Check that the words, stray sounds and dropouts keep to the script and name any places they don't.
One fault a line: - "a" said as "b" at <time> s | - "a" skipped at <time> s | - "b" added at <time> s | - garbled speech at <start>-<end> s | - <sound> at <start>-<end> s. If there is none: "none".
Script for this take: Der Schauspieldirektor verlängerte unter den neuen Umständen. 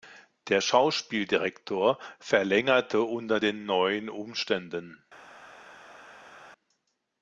none